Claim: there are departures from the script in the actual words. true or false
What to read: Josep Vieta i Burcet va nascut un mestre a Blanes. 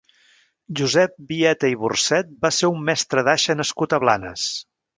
true